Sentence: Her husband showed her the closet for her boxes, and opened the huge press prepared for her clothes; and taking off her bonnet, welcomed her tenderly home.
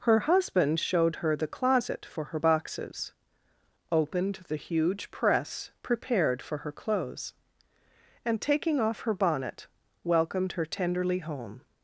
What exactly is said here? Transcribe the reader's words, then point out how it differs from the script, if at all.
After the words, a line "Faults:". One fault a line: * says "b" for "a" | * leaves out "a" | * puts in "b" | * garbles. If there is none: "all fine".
Her husband showed her the closet for her boxes, opened the huge press prepared for her clothes; and taking off her bonnet, welcomed her tenderly home.
Faults:
* leaves out "and"